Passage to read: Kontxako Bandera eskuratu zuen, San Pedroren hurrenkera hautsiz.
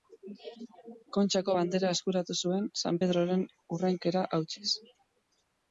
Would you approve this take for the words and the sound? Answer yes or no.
yes